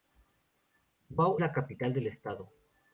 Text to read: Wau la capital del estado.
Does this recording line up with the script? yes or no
yes